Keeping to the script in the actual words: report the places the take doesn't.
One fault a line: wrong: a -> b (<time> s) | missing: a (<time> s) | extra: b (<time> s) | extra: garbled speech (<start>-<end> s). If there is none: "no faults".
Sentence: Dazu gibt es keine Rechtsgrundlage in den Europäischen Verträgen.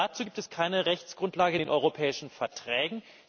no faults